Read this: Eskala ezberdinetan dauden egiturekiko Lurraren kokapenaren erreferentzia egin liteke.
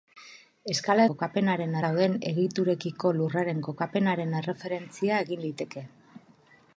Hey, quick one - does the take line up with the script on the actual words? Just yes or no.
no